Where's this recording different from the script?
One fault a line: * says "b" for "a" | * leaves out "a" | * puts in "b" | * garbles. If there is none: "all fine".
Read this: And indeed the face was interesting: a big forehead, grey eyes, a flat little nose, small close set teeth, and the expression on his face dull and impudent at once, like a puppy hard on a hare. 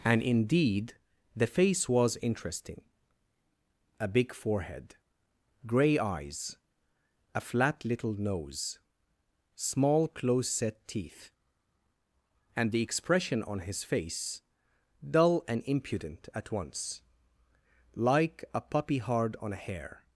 all fine